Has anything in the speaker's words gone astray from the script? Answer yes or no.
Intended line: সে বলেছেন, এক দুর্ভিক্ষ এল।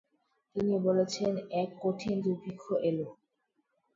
yes